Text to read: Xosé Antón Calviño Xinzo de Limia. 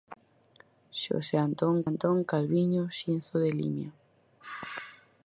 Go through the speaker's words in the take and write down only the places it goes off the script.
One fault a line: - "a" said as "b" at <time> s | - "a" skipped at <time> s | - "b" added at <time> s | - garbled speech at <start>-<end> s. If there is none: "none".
- "Antón" added at 1.9 s